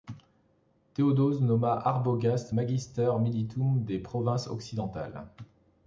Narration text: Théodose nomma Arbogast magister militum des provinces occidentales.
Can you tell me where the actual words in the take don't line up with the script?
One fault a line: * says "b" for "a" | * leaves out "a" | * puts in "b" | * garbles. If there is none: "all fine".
all fine